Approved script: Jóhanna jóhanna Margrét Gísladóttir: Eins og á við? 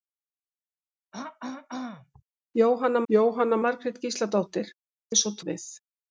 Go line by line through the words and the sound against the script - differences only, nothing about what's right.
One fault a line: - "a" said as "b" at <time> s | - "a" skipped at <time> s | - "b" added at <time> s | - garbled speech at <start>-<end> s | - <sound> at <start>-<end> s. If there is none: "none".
- throat clearing at 1.1-2.2 s